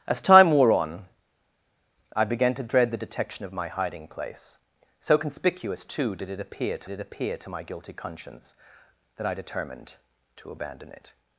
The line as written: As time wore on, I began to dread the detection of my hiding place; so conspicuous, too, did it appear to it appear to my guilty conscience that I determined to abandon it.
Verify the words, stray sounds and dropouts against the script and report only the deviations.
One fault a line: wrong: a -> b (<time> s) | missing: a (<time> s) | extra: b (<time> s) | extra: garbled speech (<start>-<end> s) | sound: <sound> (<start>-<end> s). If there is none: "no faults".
no faults